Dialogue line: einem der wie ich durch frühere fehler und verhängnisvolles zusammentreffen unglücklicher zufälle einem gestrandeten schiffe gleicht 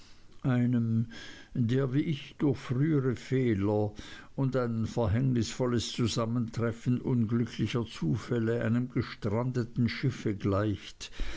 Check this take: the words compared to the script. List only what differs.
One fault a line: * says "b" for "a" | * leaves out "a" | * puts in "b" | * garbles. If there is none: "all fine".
* puts in "ein"